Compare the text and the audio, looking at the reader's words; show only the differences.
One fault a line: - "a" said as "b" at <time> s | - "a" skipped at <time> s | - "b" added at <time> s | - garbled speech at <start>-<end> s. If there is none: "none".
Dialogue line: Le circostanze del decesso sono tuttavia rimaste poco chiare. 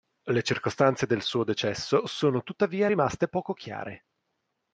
- "suo" added at 1.2 s